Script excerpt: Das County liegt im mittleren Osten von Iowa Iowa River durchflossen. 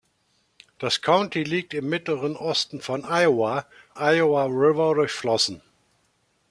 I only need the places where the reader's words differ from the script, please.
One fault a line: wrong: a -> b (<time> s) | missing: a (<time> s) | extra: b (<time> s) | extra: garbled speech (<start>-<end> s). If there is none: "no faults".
no faults